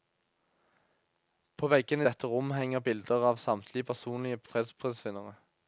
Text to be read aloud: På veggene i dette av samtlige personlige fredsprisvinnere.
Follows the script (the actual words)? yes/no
no